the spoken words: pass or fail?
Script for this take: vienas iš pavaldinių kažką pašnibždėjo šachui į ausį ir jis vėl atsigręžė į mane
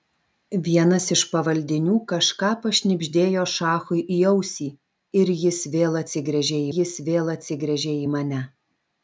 fail